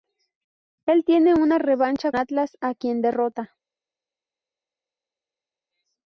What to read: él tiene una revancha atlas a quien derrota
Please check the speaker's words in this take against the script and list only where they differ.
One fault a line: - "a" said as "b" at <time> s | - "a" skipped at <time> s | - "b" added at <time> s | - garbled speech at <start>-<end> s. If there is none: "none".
none